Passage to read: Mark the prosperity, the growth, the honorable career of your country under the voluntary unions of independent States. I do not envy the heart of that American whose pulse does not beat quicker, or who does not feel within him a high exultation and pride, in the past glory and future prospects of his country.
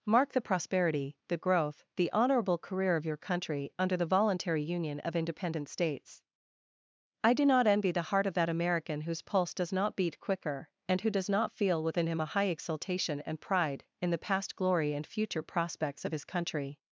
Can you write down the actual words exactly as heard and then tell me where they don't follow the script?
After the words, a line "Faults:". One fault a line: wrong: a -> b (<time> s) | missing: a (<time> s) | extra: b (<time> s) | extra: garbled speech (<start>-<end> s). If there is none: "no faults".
Mark the prosperity, the growth, the honorable career of your country under the voluntary union of independent States. I do not envy the heart of that American whose pulse does not beat quicker, and who does not feel within him a high exultation and pride, in the past glory and future prospects of his country.
Faults:
wrong: unions -> union (4.6 s)
wrong: or -> and (10.9 s)